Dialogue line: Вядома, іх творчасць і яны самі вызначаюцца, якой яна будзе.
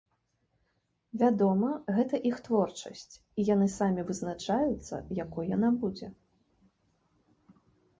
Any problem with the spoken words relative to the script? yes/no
yes